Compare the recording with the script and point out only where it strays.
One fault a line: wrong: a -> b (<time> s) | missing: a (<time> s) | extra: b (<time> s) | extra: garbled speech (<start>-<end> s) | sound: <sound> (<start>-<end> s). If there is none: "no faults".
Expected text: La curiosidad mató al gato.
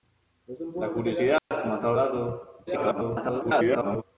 sound: dropout (1.4-1.5 s)
extra: garbled speech (2.7-4.0 s)